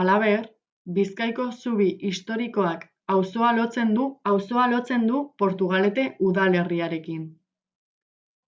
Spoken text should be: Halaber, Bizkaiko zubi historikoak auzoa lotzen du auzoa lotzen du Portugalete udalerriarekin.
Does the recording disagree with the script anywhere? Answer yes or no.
no